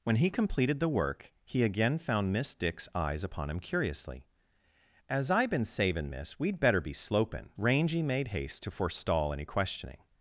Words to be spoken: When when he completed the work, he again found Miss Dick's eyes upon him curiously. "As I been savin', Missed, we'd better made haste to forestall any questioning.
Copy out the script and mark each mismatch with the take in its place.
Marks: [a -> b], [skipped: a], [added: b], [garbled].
When [skipped: when] he completed the work, he again found Miss Dick's eyes upon him curiously. "As I been savin', [Missed, -> Miss] we'd better [added: be slopin Rangy] made haste to forestall any questioning.